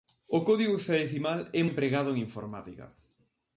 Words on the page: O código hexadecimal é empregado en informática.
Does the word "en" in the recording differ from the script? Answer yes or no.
no